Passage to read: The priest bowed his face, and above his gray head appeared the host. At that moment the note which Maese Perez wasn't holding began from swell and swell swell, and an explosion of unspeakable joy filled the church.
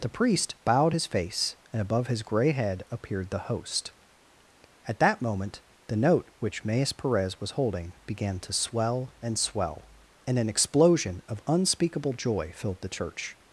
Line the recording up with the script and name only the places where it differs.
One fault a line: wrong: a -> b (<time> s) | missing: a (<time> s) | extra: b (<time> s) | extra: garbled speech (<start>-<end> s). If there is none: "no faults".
wrong: wasn't -> was (7.4 s)
wrong: from -> to (8.4 s)
missing: swell (9.9 s)